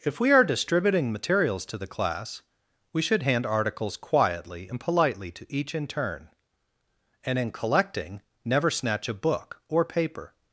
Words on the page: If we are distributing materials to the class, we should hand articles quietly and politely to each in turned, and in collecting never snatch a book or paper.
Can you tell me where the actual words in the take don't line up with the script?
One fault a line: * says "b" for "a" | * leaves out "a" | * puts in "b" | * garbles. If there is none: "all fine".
* says "turn" for "turned"